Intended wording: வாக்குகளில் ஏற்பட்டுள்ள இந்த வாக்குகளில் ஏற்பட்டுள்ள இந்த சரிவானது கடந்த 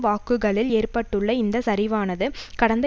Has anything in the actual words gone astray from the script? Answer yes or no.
yes